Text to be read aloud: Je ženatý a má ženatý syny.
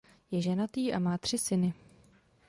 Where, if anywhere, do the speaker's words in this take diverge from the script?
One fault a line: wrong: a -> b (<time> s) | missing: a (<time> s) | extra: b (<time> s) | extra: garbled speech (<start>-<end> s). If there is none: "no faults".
wrong: ženatý -> tři (1.2 s)